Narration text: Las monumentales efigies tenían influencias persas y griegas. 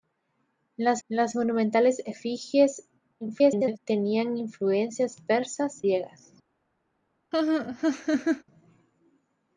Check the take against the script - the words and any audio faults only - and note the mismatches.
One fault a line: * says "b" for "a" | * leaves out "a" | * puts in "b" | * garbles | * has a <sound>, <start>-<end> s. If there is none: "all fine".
* puts in "las"
* garbles
* leaves out "y"
* has a laugh, 7.3-8.4 s